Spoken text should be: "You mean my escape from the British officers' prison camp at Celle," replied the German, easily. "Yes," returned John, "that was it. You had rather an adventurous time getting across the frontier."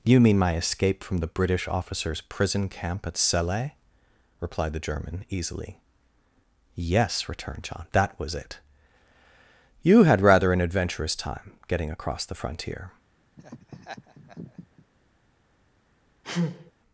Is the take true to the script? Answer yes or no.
yes